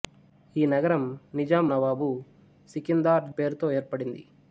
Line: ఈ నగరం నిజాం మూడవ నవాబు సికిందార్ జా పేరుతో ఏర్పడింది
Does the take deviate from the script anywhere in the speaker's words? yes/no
yes